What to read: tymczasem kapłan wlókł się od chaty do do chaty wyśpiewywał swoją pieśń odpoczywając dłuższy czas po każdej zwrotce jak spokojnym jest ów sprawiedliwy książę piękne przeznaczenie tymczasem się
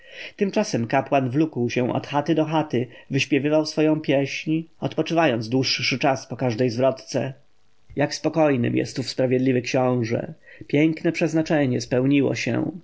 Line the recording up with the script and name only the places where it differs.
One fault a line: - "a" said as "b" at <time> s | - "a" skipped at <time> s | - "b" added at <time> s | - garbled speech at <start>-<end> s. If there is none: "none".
- "do" skipped at 2.4 s
- "tymczasem" said as "spełniło" at 11.8 s